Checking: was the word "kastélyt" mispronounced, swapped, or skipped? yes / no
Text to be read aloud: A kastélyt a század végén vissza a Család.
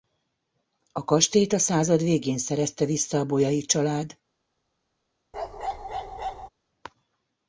no